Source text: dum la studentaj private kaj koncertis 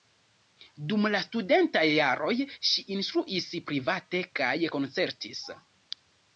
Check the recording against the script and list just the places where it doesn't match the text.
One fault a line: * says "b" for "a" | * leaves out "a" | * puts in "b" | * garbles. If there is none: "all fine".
* puts in "jaroj ŝi instruis"